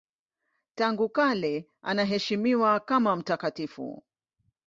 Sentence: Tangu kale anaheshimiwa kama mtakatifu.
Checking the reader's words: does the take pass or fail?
pass